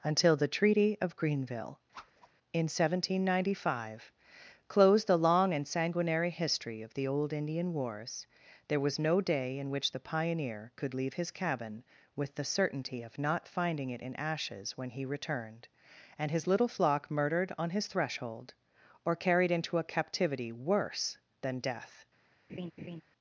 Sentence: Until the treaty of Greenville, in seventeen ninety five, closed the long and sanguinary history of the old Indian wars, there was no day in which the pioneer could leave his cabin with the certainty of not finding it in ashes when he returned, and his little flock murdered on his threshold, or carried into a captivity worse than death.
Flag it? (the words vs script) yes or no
no